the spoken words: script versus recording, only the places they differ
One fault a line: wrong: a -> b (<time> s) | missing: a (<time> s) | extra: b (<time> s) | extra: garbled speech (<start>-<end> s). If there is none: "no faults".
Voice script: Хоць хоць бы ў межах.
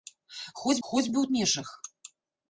no faults